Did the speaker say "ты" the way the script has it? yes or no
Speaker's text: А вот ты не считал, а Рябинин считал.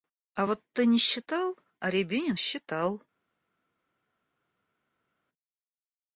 yes